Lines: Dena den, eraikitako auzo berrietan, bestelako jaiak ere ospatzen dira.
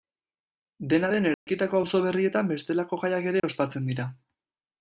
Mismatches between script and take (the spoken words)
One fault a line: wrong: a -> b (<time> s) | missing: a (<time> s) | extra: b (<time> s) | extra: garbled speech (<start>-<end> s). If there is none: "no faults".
no faults